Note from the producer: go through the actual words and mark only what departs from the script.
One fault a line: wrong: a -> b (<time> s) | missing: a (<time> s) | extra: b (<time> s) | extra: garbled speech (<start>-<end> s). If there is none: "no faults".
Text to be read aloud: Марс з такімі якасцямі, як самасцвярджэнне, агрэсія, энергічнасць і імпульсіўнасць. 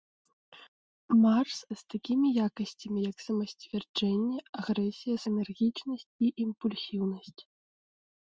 no faults